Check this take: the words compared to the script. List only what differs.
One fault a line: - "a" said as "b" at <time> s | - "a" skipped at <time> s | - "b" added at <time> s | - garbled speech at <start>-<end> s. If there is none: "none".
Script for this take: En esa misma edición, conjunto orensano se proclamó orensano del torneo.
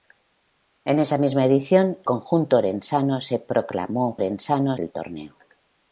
none